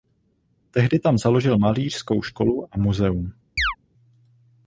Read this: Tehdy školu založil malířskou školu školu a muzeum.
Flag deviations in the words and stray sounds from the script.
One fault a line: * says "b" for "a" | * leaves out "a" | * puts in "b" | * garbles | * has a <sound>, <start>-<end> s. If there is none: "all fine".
* says "tam" for "školu"
* leaves out "školu"
* has a chirp, 3.6-3.8 s